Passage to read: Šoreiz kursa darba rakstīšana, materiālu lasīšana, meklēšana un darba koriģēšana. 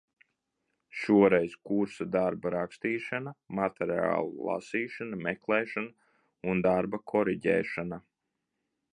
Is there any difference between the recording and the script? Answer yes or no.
no